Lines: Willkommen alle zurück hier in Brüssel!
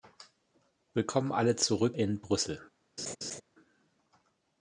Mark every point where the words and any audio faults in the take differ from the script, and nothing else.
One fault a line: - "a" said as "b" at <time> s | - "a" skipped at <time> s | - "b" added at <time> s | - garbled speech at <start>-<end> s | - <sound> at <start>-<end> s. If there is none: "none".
- "hier" skipped at 1.9 s
- laugh at 3.0-3.4 s